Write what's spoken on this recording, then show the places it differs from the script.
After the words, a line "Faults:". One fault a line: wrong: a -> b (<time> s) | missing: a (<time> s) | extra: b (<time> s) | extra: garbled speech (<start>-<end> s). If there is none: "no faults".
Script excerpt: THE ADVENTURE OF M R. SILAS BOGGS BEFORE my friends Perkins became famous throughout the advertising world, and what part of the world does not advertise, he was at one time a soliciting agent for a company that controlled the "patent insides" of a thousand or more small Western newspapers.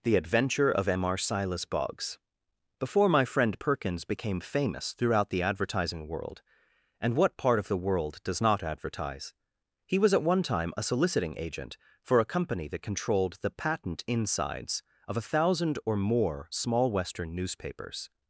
THE ADVENTURE OF M R. SILAS BOGGS BEFORE my friend Perkins became famous throughout the advertising world, and what part of the world does not advertise, he was at one time a soliciting agent for a company that controlled the "patent insides" of a thousand or more small Western newspapers.
Faults:
wrong: friends -> friend (3.2 s)